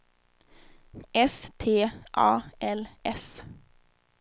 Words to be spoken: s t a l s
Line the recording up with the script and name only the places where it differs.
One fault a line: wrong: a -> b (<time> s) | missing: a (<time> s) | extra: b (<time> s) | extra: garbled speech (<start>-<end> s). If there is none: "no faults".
no faults